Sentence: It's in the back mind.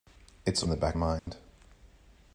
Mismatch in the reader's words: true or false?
false